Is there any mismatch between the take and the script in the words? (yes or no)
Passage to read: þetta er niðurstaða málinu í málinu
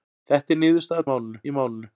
no